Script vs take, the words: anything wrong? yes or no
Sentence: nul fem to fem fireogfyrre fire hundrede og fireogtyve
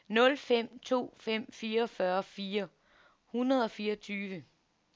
no